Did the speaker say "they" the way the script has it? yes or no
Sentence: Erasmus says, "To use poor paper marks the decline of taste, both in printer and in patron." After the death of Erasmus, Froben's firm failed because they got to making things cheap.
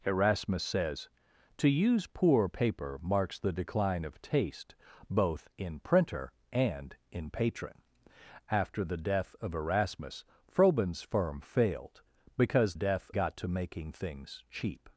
no